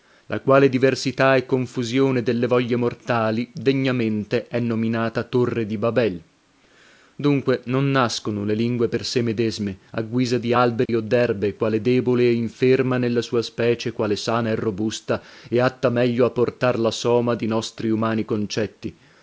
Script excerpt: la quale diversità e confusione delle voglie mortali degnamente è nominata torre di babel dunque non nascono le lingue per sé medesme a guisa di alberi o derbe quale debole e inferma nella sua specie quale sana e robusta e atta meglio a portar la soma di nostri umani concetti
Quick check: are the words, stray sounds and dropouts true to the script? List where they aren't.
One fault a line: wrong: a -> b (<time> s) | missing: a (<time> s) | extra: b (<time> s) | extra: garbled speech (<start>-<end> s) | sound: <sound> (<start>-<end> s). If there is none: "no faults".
sound: dropout (10.9-10.9 s)